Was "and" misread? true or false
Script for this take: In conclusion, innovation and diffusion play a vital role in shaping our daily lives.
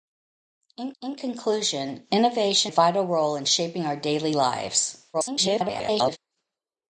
true